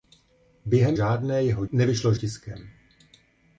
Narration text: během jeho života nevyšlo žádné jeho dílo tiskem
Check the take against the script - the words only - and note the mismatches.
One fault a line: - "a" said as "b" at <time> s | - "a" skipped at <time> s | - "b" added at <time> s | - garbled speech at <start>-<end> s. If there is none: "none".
- "jeho života nevyšlo" skipped at 1.0 s
- "dílo" said as "nevyšlo" at 1.7 s